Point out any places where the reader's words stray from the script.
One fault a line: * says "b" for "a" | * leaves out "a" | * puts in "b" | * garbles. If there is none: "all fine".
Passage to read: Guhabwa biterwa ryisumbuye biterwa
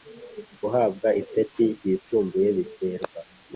* says "ipeti" for "biterwa"